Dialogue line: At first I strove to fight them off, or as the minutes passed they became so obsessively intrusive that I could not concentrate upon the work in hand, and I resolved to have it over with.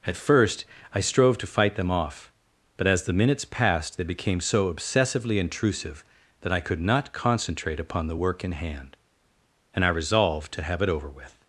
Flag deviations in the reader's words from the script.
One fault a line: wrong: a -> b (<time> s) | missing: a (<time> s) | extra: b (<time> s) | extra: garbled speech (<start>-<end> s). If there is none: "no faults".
wrong: or -> but (2.8 s)